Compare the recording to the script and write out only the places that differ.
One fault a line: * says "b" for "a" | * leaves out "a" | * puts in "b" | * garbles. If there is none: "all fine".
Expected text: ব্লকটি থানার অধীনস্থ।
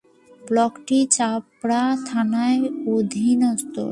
* puts in "চাপড়া"